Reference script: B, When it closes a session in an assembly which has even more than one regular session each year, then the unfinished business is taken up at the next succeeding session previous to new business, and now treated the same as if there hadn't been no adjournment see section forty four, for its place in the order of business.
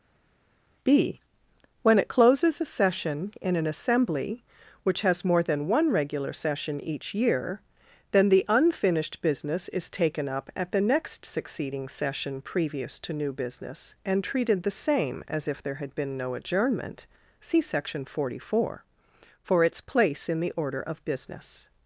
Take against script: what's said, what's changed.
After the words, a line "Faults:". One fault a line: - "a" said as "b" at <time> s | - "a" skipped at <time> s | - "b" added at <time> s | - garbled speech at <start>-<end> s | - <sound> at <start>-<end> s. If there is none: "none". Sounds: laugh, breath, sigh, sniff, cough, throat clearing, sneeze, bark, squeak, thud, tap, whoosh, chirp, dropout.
B, When it closes a session in an assembly which has more than one regular session each year, then the unfinished business is taken up at the next succeeding session previous to new business, and treated the same as if there had been no adjournment see section forty four, for its place in the order of business.
Faults:
- "even" skipped at 5.2 s
- "now" skipped at 14.2 s
- "hadn't" said as "had" at 15.7 s